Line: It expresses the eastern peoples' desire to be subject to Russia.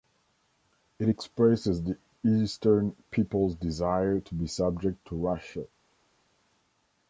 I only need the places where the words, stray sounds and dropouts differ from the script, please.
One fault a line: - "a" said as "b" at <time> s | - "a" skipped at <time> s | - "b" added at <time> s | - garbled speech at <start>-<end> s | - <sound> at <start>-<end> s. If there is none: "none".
none